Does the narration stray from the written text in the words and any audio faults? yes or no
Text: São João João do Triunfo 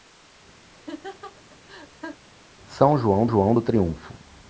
yes